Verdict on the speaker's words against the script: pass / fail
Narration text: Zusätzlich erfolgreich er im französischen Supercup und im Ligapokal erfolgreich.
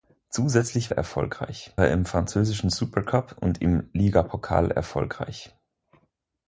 pass